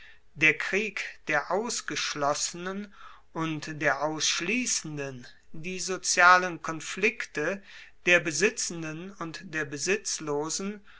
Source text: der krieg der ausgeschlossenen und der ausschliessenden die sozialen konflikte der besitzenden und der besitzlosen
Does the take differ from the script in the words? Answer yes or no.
no